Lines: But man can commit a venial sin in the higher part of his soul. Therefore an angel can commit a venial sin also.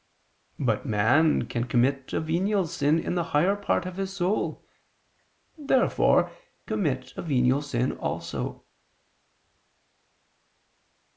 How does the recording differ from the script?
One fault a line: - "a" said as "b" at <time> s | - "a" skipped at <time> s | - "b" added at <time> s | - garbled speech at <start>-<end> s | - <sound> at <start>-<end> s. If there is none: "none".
- "an angel can" skipped at 6.3 s